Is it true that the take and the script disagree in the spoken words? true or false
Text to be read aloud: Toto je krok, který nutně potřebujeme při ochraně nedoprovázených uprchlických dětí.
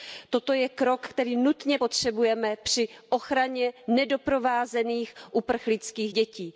false